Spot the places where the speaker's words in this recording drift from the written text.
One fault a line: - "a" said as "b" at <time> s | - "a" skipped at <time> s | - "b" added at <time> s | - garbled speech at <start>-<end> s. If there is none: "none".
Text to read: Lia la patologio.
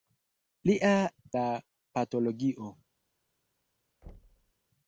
none